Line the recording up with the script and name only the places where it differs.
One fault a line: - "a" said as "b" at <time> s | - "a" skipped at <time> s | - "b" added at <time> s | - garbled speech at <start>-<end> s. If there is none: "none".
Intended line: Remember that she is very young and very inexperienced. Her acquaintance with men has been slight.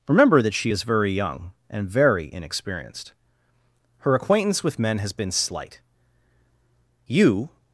- "You" added at 7.1 s